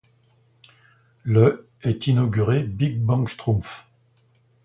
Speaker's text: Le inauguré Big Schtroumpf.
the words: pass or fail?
fail